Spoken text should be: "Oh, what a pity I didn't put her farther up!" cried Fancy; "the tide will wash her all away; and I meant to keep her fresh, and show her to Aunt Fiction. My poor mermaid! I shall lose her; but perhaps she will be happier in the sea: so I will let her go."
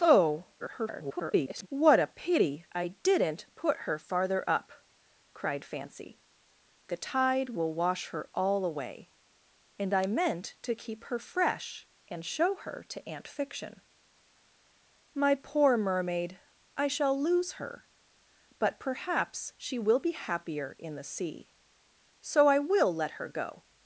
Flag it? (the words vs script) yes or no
yes